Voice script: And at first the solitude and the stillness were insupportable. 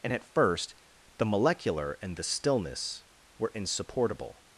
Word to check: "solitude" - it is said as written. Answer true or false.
false